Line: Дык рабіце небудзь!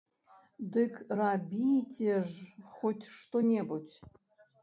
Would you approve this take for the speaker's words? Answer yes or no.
no